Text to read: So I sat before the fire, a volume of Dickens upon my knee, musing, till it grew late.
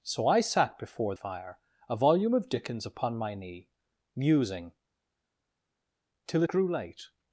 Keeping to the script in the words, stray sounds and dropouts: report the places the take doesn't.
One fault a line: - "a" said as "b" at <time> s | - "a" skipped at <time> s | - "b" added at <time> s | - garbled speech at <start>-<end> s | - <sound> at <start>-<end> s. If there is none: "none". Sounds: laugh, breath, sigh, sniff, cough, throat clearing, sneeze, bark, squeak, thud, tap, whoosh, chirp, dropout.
- "the" skipped at 1.1 s
- "it" skipped at 6.4 s